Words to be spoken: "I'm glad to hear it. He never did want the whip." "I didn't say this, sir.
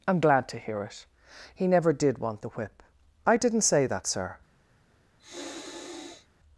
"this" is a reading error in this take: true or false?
true